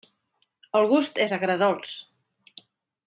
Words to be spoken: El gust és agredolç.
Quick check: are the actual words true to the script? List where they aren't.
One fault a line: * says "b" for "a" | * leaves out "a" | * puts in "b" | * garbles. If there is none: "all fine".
all fine